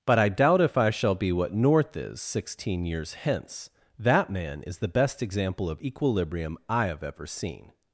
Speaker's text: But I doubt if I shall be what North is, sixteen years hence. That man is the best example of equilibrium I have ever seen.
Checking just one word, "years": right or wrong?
right